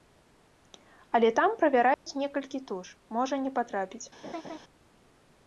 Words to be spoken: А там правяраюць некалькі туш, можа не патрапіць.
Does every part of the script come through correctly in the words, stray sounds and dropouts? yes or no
no